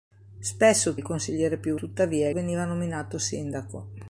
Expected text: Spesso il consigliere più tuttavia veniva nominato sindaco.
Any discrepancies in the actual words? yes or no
no